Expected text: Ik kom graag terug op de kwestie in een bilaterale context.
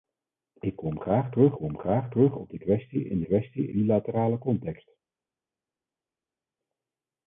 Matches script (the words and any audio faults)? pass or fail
fail